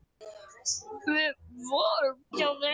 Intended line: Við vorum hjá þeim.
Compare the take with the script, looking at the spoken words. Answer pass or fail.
pass